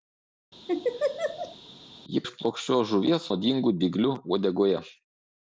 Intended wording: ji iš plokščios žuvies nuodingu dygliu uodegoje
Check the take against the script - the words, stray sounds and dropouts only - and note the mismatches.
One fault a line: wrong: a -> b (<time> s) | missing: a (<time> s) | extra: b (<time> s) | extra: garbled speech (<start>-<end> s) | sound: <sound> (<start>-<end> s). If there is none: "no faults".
sound: laugh (0.7-1.6 s)